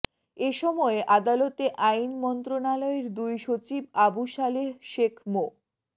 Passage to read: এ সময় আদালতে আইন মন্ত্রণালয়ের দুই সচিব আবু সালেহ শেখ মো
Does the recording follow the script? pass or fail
pass